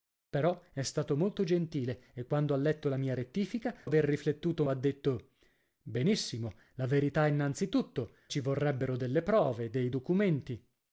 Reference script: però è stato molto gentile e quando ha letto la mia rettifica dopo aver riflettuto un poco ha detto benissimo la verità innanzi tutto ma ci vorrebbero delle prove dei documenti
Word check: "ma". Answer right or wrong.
wrong